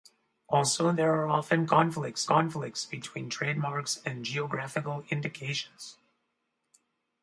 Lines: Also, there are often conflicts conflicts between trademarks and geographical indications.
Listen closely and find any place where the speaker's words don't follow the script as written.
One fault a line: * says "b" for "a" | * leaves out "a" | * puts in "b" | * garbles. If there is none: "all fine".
all fine